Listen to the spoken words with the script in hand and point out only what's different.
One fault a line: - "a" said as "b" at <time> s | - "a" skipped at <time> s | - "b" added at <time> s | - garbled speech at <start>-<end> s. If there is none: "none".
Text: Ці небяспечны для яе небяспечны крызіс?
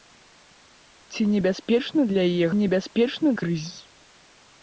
none